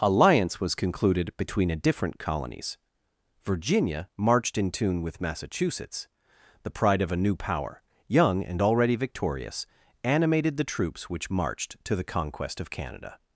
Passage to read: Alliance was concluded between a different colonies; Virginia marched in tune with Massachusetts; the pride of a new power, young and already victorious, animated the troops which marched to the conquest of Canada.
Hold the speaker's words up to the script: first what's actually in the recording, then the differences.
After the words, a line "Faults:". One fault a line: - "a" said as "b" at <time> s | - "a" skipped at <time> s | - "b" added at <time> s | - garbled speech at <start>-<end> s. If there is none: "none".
Alliance was concluded between a different colonies; Virginia marched in tune with Massachusetts; the pride of a new power, young and already victorious, animated the troops which marched to the conquest of Canada.
Faults:
none